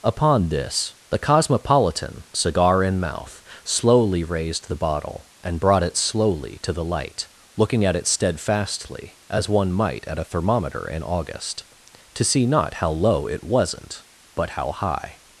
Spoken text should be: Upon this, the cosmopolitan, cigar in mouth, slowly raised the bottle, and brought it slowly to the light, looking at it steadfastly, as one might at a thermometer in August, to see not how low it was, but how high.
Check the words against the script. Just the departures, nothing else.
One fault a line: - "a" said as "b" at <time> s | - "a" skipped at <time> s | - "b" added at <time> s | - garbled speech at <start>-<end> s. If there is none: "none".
- "was" said as "wasn't" at 13.4 s